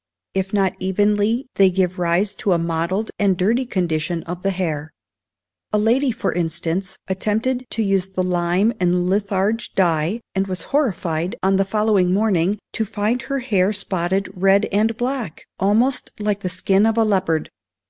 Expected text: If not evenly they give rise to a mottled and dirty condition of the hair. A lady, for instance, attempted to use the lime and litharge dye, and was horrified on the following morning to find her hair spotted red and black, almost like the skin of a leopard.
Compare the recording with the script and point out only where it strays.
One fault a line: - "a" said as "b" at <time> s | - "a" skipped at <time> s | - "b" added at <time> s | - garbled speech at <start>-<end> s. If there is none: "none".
none